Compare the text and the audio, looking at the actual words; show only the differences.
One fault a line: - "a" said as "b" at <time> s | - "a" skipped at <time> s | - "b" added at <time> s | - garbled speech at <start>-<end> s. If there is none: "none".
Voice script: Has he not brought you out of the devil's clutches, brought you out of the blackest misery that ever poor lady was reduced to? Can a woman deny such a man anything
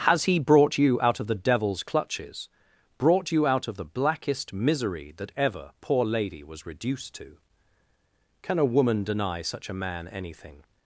- "not" skipped at 0.4 s